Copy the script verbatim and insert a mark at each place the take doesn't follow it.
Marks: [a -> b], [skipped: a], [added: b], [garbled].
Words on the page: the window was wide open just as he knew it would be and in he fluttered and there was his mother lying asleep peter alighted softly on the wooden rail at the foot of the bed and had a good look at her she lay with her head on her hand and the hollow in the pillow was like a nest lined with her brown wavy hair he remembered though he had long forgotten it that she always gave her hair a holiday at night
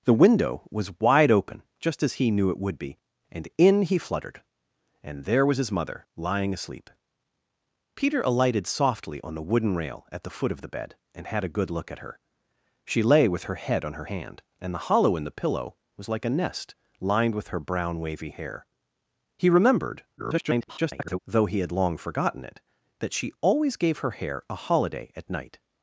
the window was wide open just as he knew it would be and in he fluttered and there was his mother lying asleep peter alighted softly on the wooden rail at the foot of the bed and had a good look at her she lay with her head on her hand and the hollow in the pillow was like a nest lined with her brown wavy hair he remembered [garbled] though he had long forgotten it that she always gave her hair a holiday at night